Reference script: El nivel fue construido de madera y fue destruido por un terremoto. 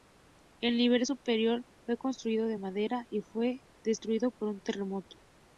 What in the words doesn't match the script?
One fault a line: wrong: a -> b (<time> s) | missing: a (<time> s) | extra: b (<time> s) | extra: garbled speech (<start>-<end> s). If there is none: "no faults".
extra: superior (1.0 s)